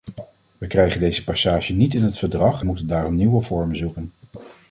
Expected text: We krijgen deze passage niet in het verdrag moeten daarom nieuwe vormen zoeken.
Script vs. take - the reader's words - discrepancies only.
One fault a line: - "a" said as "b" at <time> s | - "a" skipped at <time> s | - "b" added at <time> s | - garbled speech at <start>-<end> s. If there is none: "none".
none